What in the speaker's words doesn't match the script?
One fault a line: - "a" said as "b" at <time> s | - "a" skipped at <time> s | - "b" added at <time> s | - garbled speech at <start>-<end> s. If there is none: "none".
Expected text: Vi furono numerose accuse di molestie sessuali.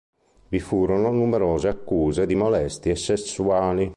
none